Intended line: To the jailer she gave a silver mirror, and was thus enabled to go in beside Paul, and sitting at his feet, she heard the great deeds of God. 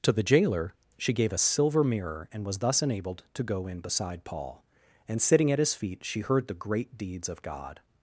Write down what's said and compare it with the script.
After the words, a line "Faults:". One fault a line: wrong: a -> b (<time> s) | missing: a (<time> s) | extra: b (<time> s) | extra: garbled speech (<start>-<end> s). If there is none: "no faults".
To the jailer she gave a silver mirror, and was thus enabled to go in beside Paul, and sitting at his feet, she heard the great deeds of God.
Faults:
no faults